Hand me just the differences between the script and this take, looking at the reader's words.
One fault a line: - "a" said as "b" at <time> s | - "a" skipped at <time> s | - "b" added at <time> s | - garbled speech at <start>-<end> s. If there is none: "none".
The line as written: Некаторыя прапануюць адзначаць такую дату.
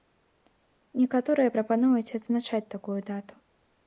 none